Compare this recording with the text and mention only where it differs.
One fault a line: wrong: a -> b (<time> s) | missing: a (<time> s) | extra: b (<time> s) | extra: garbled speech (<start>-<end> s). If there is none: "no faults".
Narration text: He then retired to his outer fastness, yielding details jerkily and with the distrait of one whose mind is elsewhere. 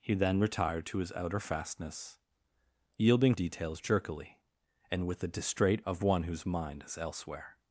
no faults